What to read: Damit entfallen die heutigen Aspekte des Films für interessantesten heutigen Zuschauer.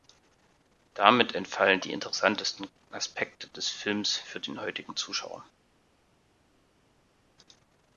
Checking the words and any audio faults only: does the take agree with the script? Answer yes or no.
no